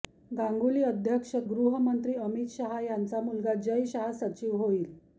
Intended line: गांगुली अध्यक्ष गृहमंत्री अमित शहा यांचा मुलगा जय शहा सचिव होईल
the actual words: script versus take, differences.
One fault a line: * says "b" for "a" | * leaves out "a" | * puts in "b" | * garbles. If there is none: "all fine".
all fine